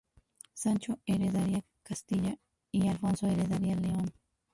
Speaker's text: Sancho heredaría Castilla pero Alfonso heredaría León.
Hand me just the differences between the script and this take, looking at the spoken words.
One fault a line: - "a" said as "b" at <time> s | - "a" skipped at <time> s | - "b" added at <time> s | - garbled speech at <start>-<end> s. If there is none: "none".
- "pero" said as "y" at 2.7 s